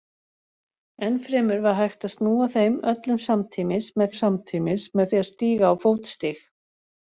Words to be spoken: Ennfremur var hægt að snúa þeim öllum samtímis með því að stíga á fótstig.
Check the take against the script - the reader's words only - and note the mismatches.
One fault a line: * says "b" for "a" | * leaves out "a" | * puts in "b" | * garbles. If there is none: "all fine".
* puts in "samtímis með"